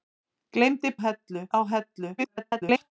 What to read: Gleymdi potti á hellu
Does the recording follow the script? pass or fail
fail